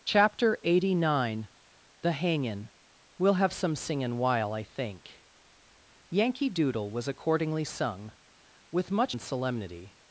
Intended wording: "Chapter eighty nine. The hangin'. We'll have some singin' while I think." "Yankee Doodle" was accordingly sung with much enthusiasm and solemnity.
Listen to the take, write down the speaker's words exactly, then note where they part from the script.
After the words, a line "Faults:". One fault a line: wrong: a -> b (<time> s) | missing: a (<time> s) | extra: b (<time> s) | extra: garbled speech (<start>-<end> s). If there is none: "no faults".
"Chapter eighty nine. The hangin'. We'll have some singin' while I think." "Yankee Doodle" was accordingly sung with much and solemnity.
Faults:
missing: enthusiasm (9.2 s)